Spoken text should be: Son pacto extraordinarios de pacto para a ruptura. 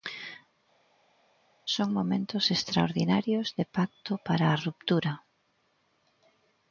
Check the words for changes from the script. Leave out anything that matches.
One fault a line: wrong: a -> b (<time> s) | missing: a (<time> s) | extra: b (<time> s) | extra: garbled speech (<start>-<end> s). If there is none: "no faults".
wrong: pacto -> momentos (1.9 s)